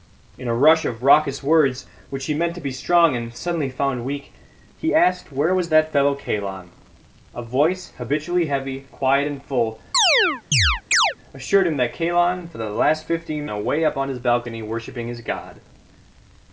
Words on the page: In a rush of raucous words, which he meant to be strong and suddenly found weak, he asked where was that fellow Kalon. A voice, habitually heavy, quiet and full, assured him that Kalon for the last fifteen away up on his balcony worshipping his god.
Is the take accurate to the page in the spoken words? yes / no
yes